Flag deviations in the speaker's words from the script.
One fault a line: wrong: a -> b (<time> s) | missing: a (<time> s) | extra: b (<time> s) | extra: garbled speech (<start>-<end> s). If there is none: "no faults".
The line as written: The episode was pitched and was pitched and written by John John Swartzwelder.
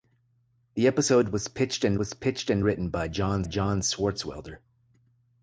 no faults